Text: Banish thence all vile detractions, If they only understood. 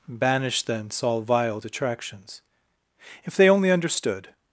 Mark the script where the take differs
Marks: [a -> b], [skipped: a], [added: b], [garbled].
Banish thence all vile detractions, If they only understood.